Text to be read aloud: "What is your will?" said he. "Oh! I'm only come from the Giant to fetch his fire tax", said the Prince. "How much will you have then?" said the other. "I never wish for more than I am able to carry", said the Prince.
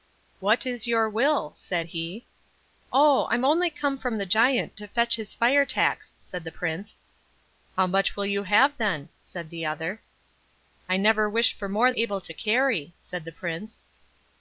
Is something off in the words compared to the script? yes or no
yes